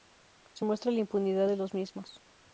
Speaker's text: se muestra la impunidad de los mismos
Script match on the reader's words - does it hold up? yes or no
yes